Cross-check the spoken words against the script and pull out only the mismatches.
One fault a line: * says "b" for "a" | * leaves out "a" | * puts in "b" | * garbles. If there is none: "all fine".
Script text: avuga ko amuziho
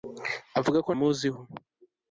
all fine